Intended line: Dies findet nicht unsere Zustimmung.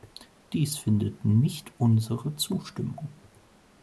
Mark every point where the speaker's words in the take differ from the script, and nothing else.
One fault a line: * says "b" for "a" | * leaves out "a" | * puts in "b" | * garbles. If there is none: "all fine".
all fine